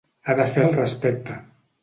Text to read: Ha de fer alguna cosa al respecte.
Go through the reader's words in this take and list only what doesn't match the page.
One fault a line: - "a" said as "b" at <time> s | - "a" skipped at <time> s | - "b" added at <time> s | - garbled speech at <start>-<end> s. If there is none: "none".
- "alguna cosa" skipped at 0.6 s